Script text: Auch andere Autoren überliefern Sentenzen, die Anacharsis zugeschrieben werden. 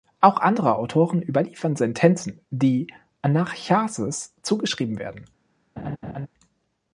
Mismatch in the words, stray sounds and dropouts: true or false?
true